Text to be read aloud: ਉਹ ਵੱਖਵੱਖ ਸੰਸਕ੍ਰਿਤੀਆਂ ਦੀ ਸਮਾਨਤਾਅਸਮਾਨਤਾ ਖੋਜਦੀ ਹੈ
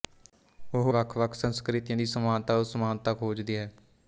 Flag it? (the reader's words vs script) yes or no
no